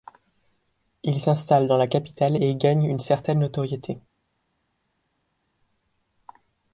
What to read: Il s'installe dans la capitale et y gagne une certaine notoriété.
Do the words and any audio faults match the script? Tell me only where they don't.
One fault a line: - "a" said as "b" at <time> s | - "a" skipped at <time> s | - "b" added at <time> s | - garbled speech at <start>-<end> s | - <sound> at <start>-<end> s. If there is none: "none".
none